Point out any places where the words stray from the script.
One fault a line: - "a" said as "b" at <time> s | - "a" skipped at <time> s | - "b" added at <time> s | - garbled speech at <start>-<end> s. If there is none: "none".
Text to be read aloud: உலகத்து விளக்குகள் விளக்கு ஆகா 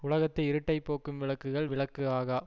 - "இருட்டைப் போக்கும்" added at 0.4 s